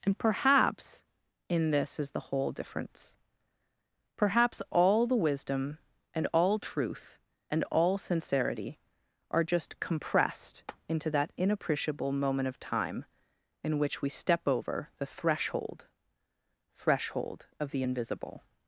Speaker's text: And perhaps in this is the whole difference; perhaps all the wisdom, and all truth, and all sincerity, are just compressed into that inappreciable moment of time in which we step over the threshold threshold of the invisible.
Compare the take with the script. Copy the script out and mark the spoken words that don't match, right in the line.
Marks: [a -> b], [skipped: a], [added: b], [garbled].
And perhaps in this is the whole difference; perhaps all the wisdom, and all truth, and all sincerity, are just compressed into that inappreciable moment of time in which we step over the threshold threshold of the invisible.